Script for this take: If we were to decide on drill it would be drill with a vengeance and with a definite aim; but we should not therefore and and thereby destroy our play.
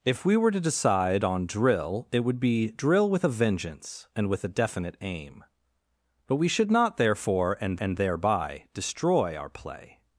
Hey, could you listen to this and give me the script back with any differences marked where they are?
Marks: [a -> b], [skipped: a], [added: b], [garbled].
If we were to decide on drill it would be drill with a vengeance and with a definite aim; but we should not therefore and and thereby destroy our play.